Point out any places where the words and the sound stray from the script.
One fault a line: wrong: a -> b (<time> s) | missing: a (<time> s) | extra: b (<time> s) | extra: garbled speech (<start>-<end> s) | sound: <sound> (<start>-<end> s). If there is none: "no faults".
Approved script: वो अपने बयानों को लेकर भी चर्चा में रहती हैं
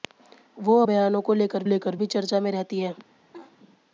missing: अपने (0.8 s)
extra: लेकर (1.6 s)
sound: laugh (3.3-3.6 s)